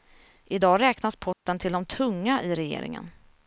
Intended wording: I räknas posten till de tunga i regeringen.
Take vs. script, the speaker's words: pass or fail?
fail